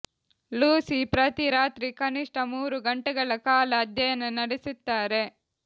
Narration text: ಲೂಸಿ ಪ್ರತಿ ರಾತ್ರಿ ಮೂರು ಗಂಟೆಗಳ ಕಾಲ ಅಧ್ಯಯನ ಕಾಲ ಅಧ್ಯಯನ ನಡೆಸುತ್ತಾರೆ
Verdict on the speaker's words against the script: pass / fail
fail